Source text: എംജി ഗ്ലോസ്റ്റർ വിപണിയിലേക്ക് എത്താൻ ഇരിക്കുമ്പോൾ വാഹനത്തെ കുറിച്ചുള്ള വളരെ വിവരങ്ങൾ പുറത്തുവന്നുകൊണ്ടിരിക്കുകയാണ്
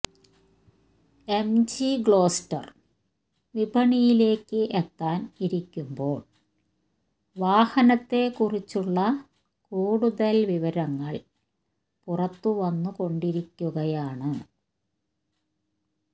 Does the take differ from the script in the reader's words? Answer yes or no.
yes